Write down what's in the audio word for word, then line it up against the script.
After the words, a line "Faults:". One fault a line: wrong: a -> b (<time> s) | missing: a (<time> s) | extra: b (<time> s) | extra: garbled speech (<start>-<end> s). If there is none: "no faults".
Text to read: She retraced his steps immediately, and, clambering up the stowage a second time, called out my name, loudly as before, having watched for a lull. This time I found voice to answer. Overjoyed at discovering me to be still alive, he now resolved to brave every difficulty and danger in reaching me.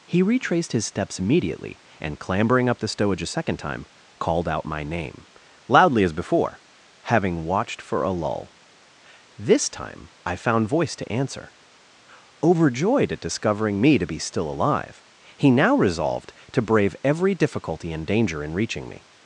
He retraced his steps immediately, and, clambering up the stowage a second time, called out my name, loudly as before, having watched for a lull. This time I found voice to answer. Overjoyed at discovering me to be still alive, he now resolved to brave every difficulty and danger in reaching me.
Faults:
wrong: She -> He (0.1 s)